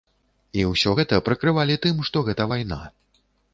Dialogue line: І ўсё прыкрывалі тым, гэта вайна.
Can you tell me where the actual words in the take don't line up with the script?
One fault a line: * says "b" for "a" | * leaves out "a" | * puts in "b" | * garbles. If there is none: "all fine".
* puts in "гэта"
* puts in "што"